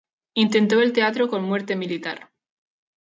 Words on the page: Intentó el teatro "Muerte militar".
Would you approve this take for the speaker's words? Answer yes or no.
no